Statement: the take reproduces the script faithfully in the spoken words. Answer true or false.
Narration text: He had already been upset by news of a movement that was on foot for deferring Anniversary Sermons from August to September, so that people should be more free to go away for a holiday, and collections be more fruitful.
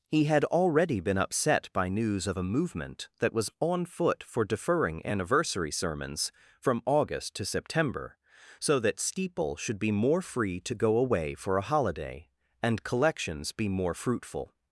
false